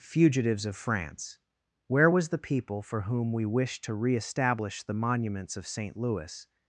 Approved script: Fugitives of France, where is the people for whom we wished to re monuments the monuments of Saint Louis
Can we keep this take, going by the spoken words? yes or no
no